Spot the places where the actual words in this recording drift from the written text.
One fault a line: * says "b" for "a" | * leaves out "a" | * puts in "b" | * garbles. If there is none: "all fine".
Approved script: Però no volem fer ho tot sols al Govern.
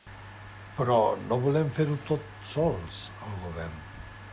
all fine